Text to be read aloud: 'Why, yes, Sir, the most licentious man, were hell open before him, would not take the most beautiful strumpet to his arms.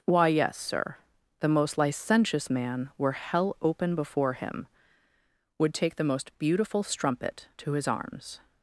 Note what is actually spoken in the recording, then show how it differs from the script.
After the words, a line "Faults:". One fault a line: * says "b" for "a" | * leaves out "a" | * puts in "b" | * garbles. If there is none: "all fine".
'Why, yes, Sir, the most licentious man, were hell open before him, would take the most beautiful strumpet to his arms.
Faults:
* leaves out "not"